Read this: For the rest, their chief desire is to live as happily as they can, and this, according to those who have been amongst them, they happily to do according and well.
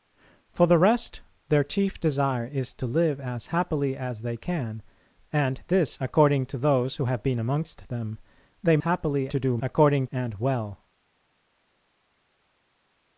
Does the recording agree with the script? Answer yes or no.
yes